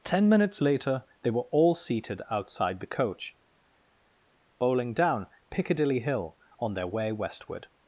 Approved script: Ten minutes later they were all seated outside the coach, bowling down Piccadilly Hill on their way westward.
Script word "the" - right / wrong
right